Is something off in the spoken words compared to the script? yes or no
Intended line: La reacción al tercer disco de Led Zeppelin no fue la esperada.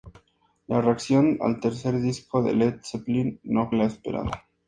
yes